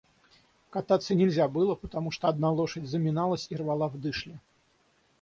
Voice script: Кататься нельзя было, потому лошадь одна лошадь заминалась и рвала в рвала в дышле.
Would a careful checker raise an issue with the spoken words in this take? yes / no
yes